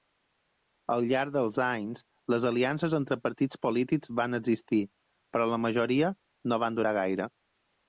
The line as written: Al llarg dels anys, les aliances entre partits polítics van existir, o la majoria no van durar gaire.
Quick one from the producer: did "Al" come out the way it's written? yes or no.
yes